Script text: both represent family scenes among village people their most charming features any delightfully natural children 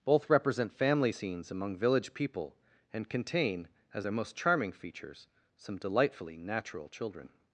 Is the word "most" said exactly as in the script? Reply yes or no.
yes